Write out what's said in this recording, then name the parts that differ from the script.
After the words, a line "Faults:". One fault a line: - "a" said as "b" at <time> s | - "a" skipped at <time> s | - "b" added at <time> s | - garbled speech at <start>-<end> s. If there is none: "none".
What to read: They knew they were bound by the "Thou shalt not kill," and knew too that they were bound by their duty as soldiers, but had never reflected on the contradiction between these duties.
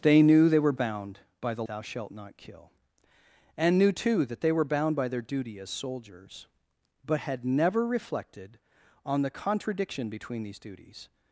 They knew they were bound by the "Thou shalt not kill," and knew too that they were bound by their duty as soldiers, but had never reflected on the contradiction between these duties.
Faults:
none